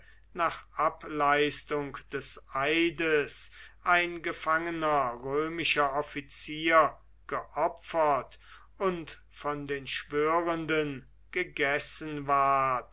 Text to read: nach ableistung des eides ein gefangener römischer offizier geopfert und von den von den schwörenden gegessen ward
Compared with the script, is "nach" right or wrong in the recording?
right